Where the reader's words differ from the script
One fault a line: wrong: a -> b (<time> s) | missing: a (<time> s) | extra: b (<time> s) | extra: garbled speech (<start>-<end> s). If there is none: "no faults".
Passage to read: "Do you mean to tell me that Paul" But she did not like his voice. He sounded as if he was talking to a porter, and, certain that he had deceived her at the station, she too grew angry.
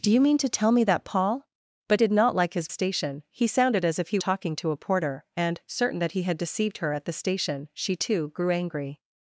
missing: she (2.0 s)
wrong: voice -> station (2.7 s)
missing: was (4.2 s)